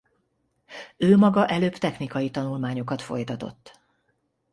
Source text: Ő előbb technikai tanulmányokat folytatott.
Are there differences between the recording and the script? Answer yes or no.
yes